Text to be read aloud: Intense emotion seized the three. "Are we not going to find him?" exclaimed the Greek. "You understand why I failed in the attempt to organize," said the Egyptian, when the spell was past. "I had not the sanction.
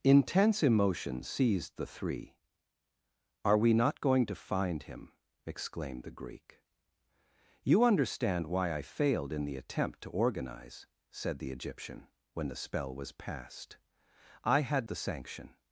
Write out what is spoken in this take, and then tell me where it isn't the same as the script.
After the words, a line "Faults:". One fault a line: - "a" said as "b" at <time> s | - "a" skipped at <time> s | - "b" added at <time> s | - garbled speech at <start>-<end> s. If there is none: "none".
Intense emotion seized the three. "Are we not going to find him?" exclaimed the Greek. "You understand why I failed in the attempt to organize," said the Egyptian, when the spell was past. "I had the sanction.
Faults:
- "not" skipped at 14.9 s